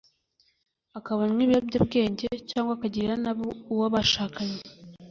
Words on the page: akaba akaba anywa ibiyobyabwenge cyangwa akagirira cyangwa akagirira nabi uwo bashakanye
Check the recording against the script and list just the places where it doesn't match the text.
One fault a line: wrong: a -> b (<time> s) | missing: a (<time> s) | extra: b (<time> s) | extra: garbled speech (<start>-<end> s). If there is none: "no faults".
missing: akaba (1.2 s)
missing: cyangwa akagirira (3.1 s)